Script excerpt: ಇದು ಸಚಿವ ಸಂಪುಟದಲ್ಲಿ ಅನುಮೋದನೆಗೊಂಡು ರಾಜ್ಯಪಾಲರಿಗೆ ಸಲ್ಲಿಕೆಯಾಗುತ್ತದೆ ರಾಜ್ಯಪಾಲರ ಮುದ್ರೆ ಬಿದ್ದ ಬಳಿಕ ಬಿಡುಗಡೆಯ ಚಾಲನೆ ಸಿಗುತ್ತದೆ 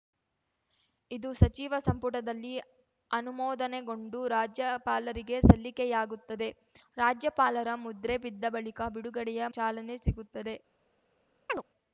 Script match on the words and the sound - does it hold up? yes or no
no